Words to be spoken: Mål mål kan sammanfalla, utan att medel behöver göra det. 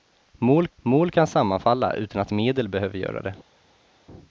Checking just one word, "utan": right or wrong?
right